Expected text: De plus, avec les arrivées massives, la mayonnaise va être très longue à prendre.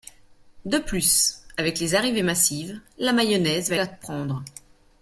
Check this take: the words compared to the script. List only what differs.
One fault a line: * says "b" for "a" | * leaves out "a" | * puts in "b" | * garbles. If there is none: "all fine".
* leaves out "être très longue"